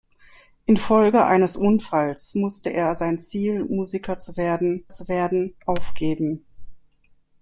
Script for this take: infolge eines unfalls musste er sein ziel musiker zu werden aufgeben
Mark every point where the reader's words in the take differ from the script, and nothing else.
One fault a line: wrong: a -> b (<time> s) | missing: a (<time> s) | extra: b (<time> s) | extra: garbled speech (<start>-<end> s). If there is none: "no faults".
extra: zu werden (4.9 s)